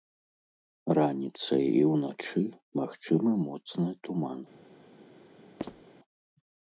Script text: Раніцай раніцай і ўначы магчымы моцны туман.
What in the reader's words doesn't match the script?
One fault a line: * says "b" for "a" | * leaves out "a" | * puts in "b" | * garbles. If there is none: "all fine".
* leaves out "раніцай"